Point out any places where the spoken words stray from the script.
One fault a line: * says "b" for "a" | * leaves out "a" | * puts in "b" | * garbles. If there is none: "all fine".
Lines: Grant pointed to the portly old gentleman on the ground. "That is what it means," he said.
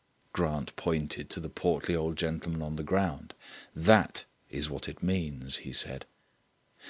all fine